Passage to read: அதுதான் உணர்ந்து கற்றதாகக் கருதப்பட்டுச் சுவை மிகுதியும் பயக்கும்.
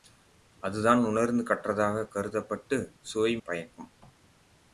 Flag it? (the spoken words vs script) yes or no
yes